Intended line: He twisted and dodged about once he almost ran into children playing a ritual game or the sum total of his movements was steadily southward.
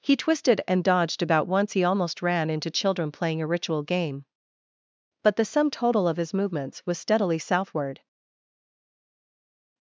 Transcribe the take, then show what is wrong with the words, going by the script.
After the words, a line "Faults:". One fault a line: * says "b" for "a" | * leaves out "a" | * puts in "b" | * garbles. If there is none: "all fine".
He twisted and dodged about once he almost ran into children playing a ritual game but the sum total of his movements was steadily southward.
Faults:
* says "but" for "or"